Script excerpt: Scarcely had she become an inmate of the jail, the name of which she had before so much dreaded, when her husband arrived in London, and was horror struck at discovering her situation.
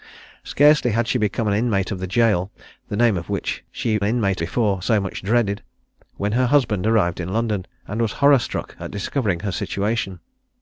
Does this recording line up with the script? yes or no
no